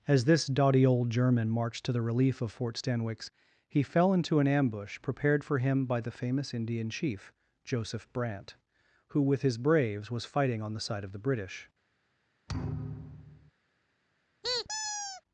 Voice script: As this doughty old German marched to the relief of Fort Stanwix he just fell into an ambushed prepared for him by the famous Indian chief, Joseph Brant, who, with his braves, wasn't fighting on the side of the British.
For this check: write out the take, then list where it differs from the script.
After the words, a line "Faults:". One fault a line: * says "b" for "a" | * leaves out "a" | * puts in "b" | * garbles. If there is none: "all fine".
As this doughty old German marched to the relief of Fort Stanwix he fell into an ambush prepared for him by the famous Indian chief, Joseph Brant, who, with his braves, was fighting on the side of the British.
Faults:
* leaves out "just"
* says "ambush" for "ambushed"
* says "was" for "wasn't"